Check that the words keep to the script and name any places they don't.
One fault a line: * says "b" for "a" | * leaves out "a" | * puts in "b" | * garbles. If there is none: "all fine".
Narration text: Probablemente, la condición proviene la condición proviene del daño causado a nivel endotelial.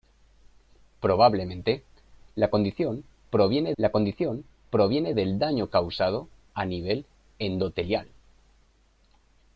all fine